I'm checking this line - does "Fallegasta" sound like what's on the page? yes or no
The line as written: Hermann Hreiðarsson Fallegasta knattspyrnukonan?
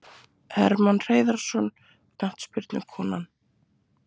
no